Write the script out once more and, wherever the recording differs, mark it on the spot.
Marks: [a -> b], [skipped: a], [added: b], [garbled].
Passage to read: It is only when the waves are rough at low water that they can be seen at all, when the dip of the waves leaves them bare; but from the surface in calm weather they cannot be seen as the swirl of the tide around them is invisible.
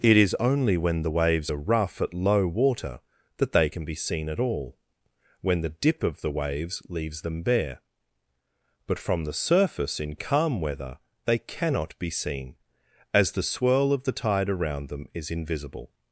It is only when the waves are rough at low water that they can be seen at all, when the dip of the waves leaves them bare; but from the surface in calm weather they cannot be seen as the swirl of the tide around them is invisible.